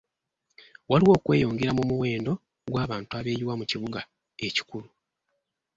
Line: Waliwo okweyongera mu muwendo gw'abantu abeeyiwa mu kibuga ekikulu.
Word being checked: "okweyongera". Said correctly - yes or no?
yes